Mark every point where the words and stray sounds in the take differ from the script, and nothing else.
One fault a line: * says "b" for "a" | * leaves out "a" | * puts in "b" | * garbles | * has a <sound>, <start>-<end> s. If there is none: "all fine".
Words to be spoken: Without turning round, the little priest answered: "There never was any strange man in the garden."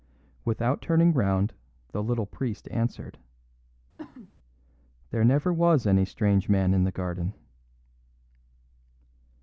* has a cough, 4.0-4.3 s